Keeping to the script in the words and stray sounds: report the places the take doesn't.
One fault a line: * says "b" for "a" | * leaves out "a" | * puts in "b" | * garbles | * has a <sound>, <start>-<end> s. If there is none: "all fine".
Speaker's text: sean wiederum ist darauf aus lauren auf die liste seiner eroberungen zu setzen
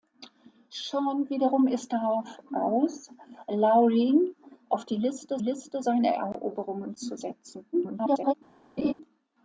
* puts in "liste"
* garbles
* has a laugh, 8.8-8.9 s